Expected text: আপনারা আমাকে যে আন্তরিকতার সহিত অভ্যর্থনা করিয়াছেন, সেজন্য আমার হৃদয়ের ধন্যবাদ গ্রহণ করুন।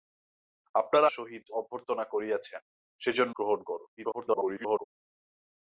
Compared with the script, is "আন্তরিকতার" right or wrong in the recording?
wrong